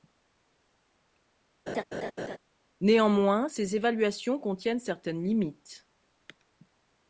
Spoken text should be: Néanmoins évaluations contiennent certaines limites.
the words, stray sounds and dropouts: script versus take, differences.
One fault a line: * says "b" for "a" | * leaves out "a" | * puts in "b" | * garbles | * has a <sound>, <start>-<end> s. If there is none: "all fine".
* has a laugh, 1.7-2.4 s
* puts in "ces"